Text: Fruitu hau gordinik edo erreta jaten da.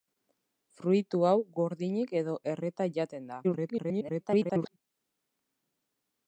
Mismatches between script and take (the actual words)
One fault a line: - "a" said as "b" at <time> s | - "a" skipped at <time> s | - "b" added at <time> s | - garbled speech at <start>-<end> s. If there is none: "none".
- garbled speech at 3.4-4.8 s